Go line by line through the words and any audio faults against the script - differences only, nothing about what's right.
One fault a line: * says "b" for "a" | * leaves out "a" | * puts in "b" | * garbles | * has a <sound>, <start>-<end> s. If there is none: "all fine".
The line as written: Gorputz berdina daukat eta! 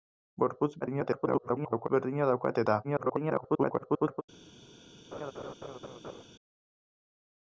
* garbles
* garbles
* has a laugh, 5.1-6.2 s